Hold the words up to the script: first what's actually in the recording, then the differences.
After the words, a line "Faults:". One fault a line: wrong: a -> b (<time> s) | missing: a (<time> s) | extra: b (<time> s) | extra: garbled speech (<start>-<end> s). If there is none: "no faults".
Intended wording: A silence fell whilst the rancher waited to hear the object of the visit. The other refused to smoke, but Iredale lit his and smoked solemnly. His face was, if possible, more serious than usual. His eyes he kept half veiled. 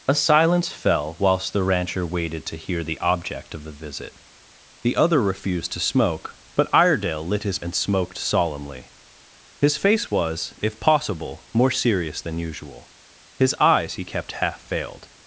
A silence fell whilst the rancher waited to hear the object of the visit. The other refused to smoke, but Iredale lit his and smoked solemnly. His face was, if possible, more serious than usual. His eyes he kept half veiled.
Faults:
no faults